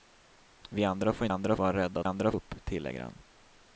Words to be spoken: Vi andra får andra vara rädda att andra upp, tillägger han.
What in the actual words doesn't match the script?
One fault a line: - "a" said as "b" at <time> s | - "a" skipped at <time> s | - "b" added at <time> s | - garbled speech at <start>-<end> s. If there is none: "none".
none